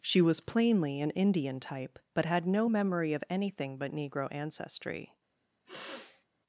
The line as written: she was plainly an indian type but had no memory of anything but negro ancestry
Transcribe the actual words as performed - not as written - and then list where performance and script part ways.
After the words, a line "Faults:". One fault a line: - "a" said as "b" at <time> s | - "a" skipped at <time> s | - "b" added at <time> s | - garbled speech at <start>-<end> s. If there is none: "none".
she was plainly an indian type but had no memory of anything but negro ancestry
Faults:
none